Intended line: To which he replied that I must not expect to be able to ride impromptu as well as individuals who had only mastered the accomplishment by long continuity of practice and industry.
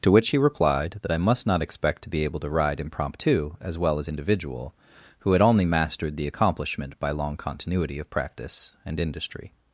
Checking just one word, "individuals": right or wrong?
wrong